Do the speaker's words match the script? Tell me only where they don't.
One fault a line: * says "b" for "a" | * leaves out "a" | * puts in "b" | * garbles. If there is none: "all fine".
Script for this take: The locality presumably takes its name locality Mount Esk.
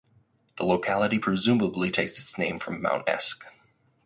* says "from" for "locality"